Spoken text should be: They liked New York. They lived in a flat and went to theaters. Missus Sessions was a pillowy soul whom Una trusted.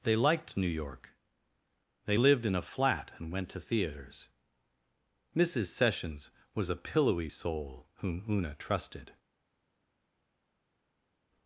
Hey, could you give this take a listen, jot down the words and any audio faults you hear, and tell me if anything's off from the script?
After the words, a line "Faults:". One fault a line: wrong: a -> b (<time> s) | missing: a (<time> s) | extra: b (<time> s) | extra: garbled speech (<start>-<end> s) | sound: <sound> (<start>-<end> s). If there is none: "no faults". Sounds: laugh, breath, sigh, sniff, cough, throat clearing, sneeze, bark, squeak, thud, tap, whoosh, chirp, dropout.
They liked New York. They lived in a flat and went to theaters. Missus Sessions was a pillowy soul whom Una trusted.
Faults:
no faults